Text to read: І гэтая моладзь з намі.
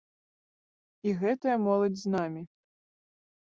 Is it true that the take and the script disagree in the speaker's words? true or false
false